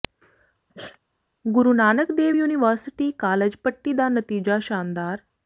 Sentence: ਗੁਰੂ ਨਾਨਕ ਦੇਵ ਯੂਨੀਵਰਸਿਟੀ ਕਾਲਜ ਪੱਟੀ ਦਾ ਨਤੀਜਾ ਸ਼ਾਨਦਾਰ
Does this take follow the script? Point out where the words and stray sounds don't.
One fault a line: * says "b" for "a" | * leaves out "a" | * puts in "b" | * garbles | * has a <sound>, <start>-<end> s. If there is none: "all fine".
* has a sneeze, 0.7-1.0 s